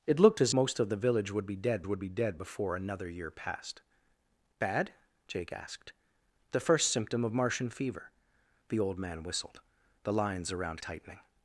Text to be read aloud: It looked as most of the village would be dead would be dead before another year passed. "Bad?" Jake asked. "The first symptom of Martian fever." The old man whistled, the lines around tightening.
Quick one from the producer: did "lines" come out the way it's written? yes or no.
yes